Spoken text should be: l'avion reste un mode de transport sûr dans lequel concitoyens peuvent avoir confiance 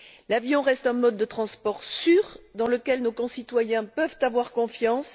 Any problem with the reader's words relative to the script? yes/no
yes